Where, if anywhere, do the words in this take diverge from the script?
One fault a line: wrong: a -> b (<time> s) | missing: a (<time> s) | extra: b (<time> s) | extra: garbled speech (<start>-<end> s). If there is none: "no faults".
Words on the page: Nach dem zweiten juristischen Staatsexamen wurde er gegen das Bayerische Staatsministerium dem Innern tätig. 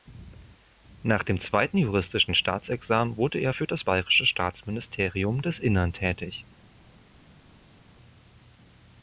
wrong: gegen -> für (3.5 s)
wrong: dem -> des (5.4 s)